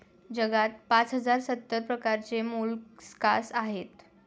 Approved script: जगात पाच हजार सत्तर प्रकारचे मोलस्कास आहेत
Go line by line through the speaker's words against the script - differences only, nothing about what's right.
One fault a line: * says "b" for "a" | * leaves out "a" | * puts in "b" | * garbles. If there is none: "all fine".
all fine